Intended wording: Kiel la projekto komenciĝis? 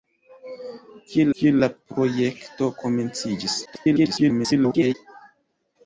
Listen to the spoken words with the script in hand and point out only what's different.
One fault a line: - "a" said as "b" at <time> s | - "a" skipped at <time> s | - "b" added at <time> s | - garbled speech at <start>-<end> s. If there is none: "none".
- "kiel" added at 1.4 s
- garbled speech at 3.7-4.9 s